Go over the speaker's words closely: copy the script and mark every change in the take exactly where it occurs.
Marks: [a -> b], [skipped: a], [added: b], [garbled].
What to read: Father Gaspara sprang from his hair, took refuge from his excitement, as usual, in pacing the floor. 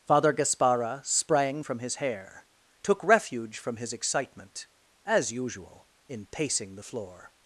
Father Gaspara sprang from his hair, took refuge from his excitement, as usual, in pacing the floor.